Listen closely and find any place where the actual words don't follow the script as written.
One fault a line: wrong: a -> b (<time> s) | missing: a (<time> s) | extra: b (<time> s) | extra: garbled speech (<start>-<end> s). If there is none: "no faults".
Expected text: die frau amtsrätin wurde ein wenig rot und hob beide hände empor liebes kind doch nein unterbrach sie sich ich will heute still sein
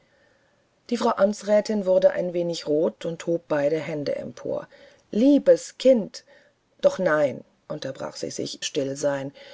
missing: ich will heute (8.6 s)